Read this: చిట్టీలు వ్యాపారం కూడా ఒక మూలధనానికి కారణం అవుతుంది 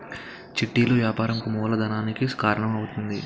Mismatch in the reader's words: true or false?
true